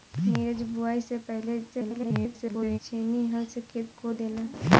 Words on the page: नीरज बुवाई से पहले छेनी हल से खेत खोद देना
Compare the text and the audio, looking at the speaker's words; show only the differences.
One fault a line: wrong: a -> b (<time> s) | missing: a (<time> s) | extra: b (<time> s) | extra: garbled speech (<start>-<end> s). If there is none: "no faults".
extra: garbled speech (1.7-2.8 s)